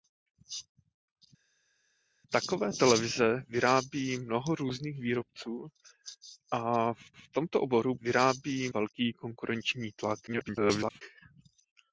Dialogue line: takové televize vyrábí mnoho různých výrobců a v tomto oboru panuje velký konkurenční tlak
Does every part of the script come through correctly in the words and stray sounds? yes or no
no